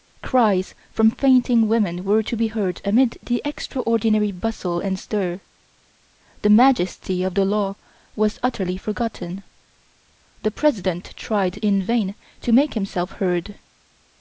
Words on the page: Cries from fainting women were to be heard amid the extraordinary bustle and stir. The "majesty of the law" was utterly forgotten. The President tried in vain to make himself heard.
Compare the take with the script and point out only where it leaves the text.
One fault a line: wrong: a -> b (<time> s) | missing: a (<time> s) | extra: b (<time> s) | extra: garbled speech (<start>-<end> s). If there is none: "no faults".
no faults